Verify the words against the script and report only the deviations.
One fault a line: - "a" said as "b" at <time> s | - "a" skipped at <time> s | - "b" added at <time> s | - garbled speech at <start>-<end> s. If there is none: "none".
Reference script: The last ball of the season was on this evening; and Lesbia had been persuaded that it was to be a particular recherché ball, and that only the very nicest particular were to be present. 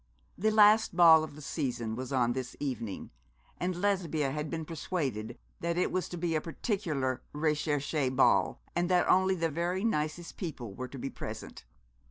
- "particular" said as "people" at 10.4 s